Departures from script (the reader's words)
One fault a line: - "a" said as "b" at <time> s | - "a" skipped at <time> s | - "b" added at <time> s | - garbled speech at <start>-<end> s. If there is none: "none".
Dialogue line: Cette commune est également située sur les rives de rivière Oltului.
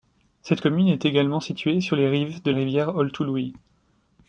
none